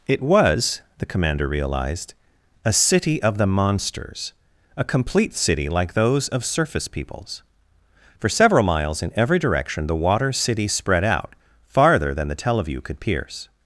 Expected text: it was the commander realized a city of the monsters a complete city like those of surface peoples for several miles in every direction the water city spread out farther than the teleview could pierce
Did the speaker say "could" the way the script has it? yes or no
yes